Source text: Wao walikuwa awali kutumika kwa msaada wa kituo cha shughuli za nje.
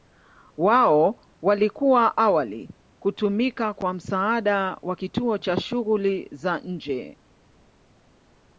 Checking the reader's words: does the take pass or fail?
pass